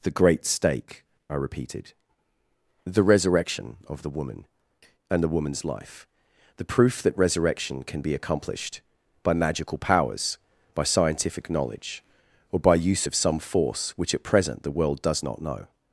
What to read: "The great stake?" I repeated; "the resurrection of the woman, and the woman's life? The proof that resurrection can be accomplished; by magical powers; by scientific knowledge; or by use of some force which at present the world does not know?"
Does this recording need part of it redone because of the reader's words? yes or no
no